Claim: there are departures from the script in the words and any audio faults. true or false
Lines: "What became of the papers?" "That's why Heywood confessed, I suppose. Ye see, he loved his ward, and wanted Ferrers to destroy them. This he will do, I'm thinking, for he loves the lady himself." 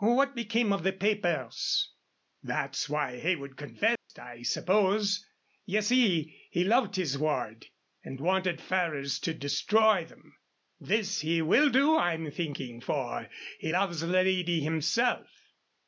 true